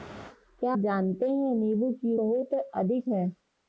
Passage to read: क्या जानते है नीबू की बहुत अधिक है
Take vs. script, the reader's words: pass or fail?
pass